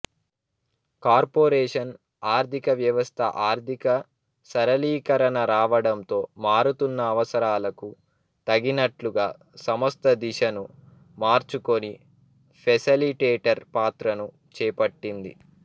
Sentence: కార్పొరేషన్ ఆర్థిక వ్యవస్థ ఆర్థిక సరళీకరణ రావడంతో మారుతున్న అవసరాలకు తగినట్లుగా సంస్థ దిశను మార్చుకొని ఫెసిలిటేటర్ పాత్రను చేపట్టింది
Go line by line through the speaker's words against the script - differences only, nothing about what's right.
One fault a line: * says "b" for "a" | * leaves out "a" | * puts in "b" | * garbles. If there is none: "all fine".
all fine